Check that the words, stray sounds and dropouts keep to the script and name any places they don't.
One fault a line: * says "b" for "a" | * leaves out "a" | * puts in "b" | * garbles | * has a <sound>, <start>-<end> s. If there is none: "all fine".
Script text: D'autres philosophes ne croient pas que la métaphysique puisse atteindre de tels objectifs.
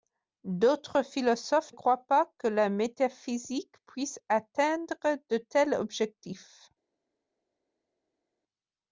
* leaves out "ne"